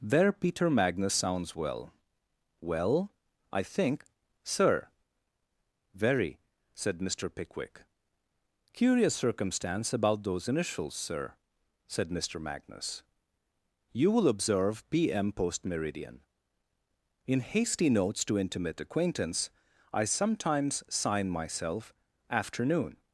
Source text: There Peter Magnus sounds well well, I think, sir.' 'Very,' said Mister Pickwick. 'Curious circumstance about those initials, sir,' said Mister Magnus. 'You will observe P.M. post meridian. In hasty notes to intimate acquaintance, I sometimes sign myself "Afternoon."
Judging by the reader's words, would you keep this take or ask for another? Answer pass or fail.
pass